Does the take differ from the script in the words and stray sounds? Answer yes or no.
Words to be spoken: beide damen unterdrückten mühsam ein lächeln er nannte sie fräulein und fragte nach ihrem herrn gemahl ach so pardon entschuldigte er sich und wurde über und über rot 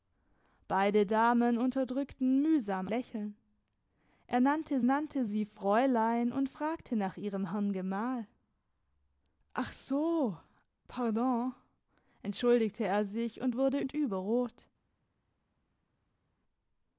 yes